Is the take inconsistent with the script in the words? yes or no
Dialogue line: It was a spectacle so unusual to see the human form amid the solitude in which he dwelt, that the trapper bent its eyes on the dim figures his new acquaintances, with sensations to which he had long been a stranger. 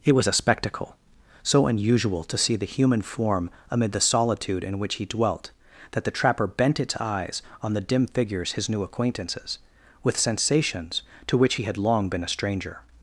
no